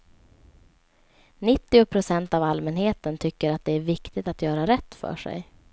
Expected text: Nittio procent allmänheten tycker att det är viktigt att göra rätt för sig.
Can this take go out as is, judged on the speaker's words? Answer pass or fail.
fail